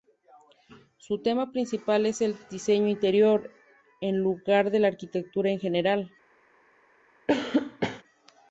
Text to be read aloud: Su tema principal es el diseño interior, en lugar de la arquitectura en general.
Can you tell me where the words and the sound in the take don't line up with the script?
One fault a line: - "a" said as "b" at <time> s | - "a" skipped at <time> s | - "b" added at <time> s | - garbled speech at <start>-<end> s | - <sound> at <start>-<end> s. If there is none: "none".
- cough at 7.3-8.0 s